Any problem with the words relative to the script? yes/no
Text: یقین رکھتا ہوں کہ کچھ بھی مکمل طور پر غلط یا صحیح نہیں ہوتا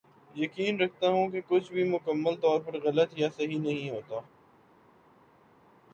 no